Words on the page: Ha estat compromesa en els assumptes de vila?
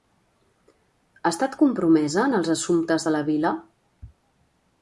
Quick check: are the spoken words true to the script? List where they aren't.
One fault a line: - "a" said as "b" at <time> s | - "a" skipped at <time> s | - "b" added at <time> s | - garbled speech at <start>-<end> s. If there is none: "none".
- "la" added at 3.2 s